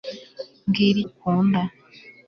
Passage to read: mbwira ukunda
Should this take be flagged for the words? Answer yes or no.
no